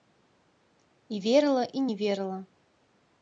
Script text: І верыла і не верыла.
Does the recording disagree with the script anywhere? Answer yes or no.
no